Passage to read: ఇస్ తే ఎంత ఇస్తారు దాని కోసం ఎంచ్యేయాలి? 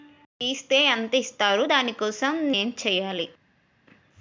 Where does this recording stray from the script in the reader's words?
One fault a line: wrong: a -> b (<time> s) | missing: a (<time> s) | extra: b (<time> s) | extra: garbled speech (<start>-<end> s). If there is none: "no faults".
no faults